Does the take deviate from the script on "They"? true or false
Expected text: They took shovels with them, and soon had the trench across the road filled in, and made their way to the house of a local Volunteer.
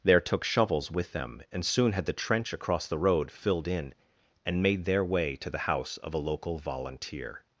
true